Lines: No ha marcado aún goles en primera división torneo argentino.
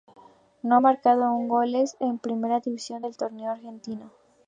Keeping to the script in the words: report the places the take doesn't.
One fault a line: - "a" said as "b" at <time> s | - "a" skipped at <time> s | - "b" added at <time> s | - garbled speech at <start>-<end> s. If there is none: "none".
- "del" added at 3.0 s